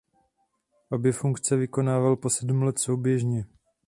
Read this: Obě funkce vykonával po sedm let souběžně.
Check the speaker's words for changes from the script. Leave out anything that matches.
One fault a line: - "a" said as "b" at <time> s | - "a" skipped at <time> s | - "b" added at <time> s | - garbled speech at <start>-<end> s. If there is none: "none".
none